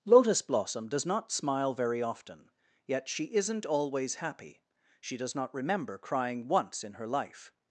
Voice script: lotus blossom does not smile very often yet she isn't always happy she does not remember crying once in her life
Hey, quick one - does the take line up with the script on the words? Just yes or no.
yes